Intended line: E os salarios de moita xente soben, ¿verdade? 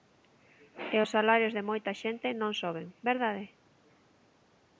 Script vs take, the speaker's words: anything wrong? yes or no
yes